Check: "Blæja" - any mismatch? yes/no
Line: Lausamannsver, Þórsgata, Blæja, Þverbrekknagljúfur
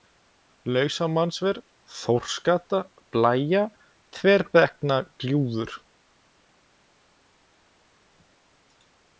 no